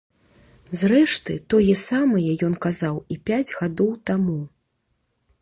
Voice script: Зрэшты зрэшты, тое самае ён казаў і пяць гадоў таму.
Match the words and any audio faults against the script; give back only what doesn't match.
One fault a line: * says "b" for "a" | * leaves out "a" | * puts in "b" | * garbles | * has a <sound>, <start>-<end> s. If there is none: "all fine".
* leaves out "зрэшты"